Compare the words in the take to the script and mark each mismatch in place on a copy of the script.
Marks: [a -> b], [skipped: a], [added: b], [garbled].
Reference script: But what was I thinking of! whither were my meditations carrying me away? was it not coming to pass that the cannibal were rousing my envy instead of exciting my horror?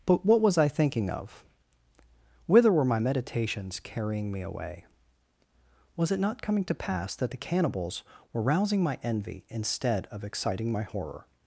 But what was I thinking of! whither were my meditations carrying me away? was it not coming to pass that the [cannibal -> cannibals] were rousing my envy instead of exciting my horror?